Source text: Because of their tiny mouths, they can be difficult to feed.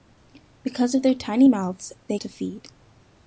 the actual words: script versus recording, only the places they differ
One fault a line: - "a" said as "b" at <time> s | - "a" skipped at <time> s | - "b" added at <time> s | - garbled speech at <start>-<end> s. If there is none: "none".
- "can be difficult" skipped at 2.2 s